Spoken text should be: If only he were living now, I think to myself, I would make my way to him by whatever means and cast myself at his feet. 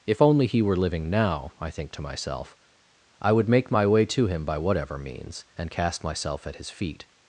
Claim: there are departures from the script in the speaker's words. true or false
false